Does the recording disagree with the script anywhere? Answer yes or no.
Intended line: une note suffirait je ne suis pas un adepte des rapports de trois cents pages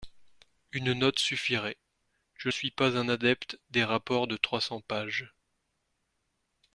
yes